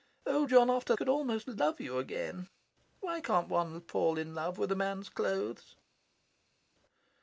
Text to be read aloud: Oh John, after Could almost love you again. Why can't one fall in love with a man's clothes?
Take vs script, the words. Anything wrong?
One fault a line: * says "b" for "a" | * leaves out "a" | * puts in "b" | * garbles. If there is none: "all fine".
all fine